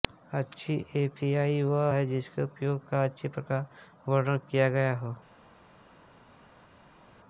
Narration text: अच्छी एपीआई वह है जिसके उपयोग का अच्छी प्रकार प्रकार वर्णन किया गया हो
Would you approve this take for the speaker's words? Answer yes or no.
no